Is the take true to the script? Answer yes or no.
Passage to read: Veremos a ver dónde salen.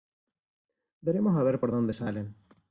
no